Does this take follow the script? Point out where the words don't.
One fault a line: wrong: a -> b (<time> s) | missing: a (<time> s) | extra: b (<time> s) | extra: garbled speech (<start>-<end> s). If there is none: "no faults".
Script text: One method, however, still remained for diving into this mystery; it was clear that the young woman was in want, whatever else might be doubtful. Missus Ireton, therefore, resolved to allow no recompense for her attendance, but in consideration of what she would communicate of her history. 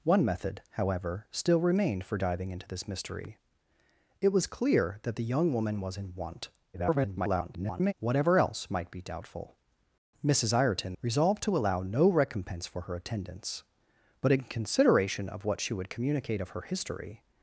extra: garbled speech (6.7-7.9 s)
missing: therefore (10.9 s)